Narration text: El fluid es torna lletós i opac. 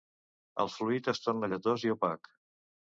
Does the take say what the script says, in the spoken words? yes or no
yes